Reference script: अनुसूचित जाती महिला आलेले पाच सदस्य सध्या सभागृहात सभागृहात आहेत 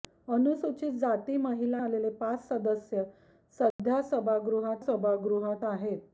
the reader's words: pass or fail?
pass